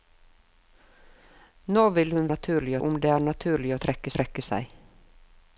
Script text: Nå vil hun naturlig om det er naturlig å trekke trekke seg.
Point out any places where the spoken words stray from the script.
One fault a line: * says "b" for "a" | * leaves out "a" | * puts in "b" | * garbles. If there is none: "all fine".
all fine